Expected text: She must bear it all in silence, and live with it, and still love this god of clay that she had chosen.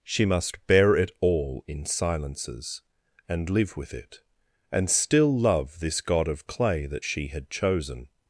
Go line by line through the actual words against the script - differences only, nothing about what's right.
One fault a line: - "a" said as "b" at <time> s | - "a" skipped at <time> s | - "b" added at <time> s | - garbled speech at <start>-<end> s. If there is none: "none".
- "silence" said as "silences" at 1.9 s